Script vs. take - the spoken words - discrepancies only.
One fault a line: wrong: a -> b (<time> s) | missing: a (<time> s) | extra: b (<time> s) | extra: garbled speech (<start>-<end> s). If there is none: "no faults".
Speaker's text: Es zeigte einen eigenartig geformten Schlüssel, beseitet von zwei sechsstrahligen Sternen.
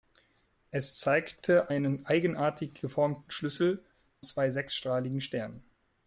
missing: beseitet von (3.8 s)